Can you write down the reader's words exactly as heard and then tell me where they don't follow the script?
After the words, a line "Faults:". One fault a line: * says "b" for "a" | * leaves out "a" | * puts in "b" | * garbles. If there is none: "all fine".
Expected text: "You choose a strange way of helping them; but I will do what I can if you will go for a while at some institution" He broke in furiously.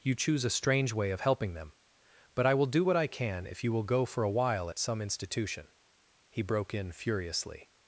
"You choose a strange way of helping them; but I will do what I can if you will go for a while at some institution" He broke in furiously.
Faults:
all fine